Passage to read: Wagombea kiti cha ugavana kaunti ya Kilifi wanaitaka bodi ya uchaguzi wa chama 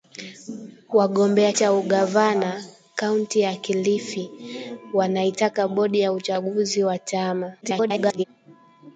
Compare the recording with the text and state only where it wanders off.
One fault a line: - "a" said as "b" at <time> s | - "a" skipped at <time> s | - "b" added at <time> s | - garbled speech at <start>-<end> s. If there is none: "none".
- "kiti" skipped at 1.5 s
- garbled speech at 7.6-8.2 s